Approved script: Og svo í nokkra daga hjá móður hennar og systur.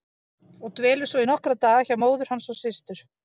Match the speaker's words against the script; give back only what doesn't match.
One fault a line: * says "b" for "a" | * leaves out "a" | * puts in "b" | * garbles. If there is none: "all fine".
* puts in "dvelur"
* says "hans" for "hennar"